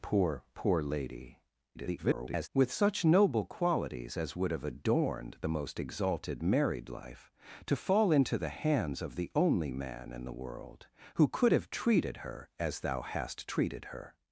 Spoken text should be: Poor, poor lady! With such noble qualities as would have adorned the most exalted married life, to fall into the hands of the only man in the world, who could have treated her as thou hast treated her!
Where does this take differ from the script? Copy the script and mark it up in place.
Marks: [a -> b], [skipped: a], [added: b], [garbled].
Poor, poor lady! [garbled] With such noble qualities as would have adorned the most exalted married life, to fall into the hands of the only man in the world, who could have treated her as thou hast treated her!